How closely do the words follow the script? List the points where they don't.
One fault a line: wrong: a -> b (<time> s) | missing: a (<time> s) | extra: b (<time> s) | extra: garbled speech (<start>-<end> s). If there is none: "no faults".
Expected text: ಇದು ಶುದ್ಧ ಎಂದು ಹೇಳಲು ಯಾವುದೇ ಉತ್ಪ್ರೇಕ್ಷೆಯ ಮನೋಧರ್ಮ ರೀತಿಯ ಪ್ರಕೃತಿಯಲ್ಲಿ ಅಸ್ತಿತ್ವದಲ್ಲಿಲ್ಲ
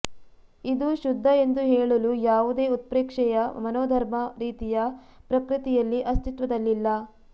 no faults